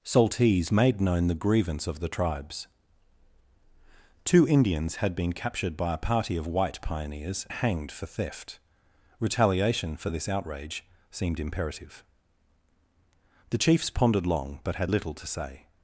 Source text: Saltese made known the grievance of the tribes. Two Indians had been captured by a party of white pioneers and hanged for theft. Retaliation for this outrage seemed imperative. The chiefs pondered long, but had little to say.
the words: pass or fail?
fail